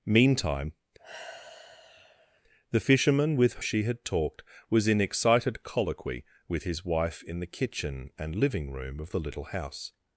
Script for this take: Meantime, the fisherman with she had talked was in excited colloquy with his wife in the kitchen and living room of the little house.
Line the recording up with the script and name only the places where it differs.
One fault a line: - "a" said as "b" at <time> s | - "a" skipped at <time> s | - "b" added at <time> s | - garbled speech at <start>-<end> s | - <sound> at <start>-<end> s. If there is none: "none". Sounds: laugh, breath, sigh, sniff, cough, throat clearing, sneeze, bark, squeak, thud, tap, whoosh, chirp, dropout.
- sigh at 1.0-2.4 s